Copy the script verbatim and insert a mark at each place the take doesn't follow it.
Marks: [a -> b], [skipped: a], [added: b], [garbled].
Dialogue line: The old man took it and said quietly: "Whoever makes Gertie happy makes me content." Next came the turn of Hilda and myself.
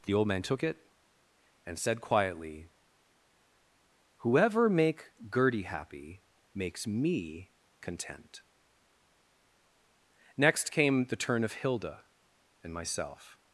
The old man took it and said quietly: "Whoever [makes -> make] Gertie happy makes me content." Next came the turn of Hilda and myself.